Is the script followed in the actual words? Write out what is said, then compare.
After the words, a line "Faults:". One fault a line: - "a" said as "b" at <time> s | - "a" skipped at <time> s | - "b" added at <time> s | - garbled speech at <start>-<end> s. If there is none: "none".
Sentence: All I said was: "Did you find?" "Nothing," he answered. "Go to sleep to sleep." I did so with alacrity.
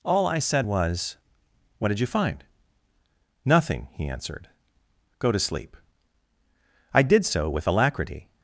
All I said was: "What did you find?" "Nothing," he answered. "Go to sleep." I did so with alacrity.
Faults:
- "What" added at 1.8 s
- "to sleep" skipped at 5.8 s